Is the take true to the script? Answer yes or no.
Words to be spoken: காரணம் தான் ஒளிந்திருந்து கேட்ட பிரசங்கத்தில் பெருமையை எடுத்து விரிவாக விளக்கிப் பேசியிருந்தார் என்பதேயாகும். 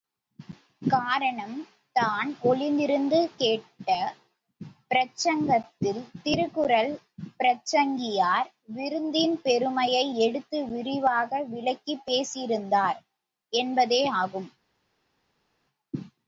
no